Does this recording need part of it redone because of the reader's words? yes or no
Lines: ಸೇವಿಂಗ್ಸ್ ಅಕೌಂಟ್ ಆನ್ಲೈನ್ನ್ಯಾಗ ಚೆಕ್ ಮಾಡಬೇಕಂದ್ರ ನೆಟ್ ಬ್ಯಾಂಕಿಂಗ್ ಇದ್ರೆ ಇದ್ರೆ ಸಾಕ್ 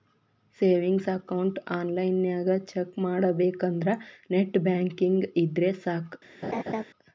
yes